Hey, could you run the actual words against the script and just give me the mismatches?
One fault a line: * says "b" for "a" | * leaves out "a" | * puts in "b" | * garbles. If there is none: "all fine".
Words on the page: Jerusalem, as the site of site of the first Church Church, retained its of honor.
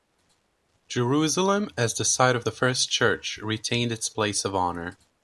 * leaves out "site of"
* leaves out "Church"
* puts in "place"